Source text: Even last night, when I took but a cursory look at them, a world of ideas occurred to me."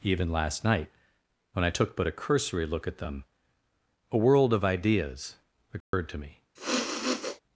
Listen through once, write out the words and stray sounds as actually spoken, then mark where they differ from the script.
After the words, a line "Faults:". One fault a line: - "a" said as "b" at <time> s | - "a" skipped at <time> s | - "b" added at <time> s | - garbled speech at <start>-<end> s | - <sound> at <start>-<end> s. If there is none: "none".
Even last night, when I took but a cursory look at them, a world of ideas occurred to me."
Faults:
- dropout at 5.8-5.9 s
- sniff at 6.6-7.4 s